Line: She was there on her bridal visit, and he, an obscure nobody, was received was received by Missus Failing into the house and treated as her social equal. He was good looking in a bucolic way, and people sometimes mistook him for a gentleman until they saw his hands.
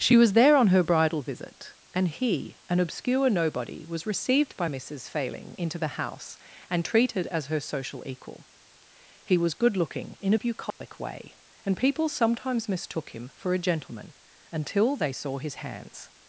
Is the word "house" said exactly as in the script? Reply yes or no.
yes